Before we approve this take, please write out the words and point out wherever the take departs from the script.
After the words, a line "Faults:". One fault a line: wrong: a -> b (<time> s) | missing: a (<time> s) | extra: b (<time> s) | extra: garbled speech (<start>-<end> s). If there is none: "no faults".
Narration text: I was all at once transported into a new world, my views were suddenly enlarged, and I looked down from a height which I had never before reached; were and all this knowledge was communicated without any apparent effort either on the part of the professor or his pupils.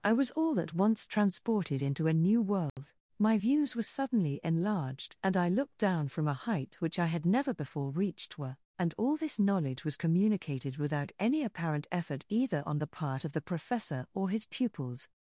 I was all at once transported into a new world, my views were suddenly enlarged, and I looked down from a height which I had never before reached; were and all this knowledge was communicated without any apparent effort either on the part of the professor or his pupils.
Faults:
no faults